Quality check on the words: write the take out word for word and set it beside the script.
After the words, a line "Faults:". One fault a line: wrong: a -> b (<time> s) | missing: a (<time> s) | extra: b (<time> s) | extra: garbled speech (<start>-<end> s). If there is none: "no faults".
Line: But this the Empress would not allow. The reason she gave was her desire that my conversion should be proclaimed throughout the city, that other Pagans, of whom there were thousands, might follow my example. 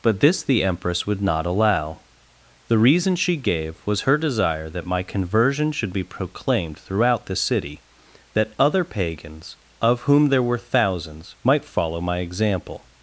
But this the Empress would not allow. The reason she gave was her desire that my conversion should be proclaimed throughout the city, that other Pagans, of whom there were thousands, might follow my example.
Faults:
no faults